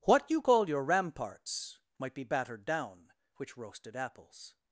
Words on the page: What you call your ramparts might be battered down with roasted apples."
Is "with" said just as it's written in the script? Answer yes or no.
no